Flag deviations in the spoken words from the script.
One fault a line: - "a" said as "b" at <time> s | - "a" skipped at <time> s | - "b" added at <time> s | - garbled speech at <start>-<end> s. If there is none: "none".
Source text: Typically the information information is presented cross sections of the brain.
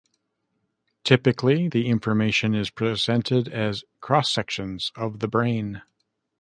- "information" skipped at 2.5 s
- "as" added at 3.5 s